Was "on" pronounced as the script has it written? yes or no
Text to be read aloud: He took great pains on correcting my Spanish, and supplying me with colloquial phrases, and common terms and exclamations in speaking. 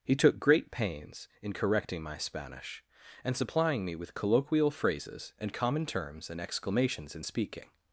no